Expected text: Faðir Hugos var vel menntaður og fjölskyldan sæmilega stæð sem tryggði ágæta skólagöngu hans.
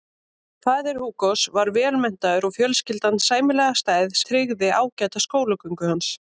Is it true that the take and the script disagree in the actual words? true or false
true